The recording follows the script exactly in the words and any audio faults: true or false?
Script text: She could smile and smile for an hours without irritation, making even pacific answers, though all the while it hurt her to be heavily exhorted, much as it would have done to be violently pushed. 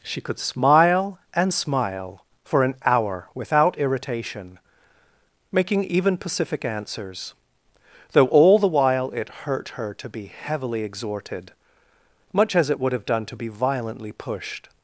false